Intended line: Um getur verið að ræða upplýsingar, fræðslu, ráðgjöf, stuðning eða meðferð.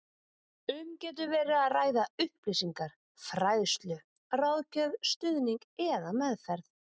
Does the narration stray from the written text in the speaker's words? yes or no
no